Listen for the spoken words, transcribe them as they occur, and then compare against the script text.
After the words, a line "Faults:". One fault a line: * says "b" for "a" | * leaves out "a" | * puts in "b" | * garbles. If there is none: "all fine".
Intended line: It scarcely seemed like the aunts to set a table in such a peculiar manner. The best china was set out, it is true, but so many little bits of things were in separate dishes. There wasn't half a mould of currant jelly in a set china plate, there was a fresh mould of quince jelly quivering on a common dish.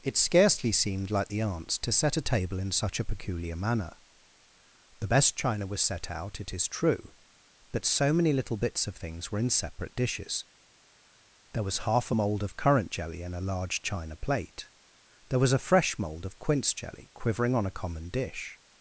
It scarcely seemed like the aunts to set a table in such a peculiar manner. The best china was set out, it is true, but so many little bits of things were in separate dishes. There was half a mould of currant jelly in a large china plate, there was a fresh mould of quince jelly quivering on a common dish.
Faults:
* says "was" for "wasn't"
* says "large" for "set"